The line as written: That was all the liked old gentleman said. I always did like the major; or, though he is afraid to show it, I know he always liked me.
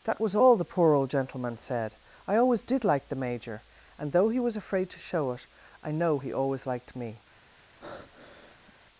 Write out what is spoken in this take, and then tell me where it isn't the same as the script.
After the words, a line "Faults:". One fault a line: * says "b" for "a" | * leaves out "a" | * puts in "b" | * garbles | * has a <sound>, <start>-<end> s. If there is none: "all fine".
That was all the poor old gentleman said. I always did like the major; and, though he was afraid to show it, I know he always liked me.
Faults:
* says "poor" for "liked"
* says "and" for "or"
* says "was" for "is"
* has a breath, 7.8-8.7 s